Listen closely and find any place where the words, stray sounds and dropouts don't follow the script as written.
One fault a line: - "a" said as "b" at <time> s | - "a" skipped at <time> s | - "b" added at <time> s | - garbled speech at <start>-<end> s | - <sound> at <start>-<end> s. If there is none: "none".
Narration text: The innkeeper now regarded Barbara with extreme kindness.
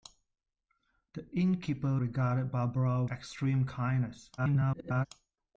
- "now" skipped at 2.0 s
- "with" skipped at 3.0 s
- garbled speech at 4.4-5.1 s